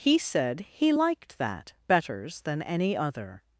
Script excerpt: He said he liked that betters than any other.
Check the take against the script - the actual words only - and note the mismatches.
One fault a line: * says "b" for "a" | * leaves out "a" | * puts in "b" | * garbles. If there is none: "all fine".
all fine